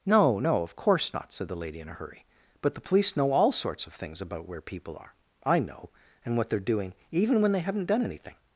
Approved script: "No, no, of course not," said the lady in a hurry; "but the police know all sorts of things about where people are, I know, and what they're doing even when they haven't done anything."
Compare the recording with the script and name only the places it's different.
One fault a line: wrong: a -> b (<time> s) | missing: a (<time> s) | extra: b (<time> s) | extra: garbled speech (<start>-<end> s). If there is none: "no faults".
no faults